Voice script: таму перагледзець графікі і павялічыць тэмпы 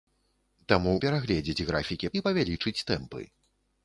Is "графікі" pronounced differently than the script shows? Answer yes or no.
no